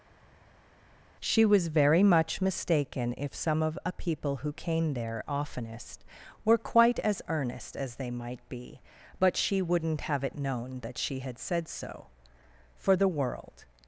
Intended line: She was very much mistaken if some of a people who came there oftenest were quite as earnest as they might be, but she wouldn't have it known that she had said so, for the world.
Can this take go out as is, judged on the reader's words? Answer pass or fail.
pass